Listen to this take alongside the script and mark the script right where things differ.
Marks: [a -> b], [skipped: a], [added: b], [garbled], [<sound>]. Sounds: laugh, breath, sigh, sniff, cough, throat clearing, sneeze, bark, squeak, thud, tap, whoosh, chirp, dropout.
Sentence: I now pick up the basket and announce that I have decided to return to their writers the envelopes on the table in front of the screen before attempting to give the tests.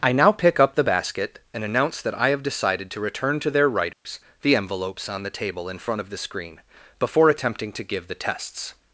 I now pick up the basket and announce that I have decided to return to their writers [dropout] the envelopes on the table in front of the screen before attempting to give the tests.